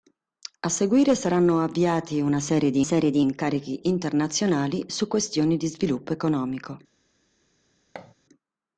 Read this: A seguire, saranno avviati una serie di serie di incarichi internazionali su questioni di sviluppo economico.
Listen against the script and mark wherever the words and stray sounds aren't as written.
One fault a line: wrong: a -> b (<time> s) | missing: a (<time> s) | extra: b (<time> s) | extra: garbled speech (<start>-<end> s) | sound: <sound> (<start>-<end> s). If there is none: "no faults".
sound: thud (7.9-8.1 s)